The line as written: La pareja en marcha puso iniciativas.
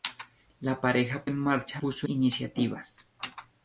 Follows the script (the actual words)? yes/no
yes